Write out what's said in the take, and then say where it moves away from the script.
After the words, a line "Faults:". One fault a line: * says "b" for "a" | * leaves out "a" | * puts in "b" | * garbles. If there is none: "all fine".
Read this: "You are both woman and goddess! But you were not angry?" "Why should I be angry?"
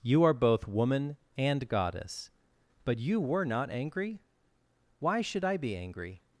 "You are both woman and goddess! But you were not angry?" "Why should I be angry?"
Faults:
all fine